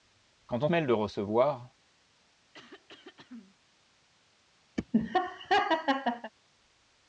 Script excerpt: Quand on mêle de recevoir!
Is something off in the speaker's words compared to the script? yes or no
no